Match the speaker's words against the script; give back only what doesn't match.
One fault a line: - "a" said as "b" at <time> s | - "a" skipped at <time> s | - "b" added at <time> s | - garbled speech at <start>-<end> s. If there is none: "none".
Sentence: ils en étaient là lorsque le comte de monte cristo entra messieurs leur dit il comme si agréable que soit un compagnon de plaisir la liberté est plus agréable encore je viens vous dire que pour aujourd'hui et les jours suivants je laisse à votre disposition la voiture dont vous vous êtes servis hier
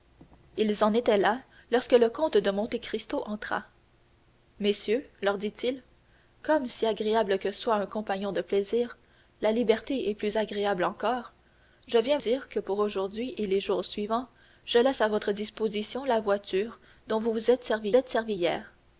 - "vous" skipped at 12.2 s
- "êtes servis" added at 18.0 s